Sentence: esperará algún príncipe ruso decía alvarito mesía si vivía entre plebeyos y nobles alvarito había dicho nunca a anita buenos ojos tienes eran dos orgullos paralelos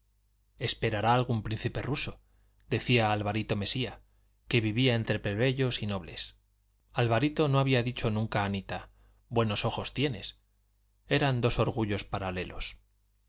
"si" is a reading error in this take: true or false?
true